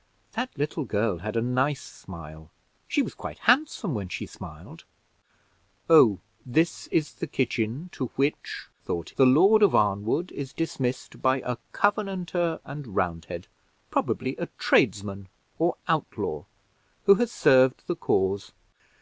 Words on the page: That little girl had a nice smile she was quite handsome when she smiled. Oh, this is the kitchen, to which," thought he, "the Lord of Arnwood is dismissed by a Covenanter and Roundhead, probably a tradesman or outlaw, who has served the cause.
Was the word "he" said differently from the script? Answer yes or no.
yes